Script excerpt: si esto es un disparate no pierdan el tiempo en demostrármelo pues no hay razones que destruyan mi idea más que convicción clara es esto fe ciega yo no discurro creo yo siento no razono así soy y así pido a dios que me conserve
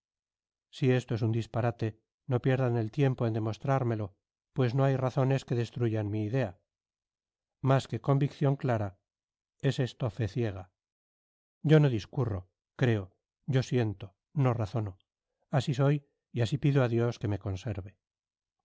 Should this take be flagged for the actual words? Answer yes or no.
no